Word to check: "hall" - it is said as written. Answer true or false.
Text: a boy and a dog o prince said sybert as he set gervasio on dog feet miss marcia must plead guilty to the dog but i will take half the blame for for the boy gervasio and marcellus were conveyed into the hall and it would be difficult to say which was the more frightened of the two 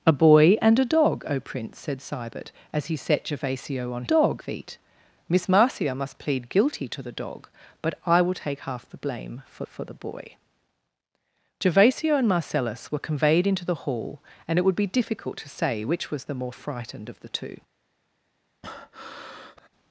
true